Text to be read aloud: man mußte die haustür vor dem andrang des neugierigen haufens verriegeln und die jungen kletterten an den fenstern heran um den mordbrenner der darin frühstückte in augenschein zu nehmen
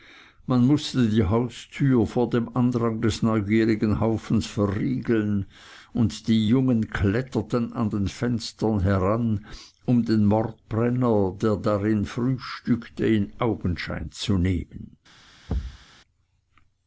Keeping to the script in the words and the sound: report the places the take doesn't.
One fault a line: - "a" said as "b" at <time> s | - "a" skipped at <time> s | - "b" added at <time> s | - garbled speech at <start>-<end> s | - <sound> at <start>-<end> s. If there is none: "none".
- thud at 15.5-15.9 s